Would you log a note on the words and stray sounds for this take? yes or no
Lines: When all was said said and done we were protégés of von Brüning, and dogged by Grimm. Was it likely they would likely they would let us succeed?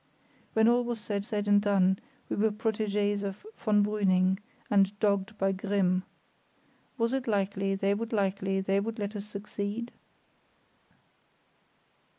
no